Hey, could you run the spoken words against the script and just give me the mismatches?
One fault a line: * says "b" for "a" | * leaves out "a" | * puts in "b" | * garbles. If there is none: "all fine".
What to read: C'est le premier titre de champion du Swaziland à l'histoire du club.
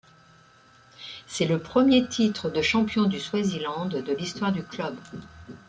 * says "de" for "à"